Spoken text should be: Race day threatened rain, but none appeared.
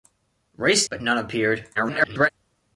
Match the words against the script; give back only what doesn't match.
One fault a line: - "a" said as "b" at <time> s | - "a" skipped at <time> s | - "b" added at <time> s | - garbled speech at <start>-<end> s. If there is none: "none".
- "day threatened rain" skipped at 0.9 s
- garbled speech at 1.8-2.3 s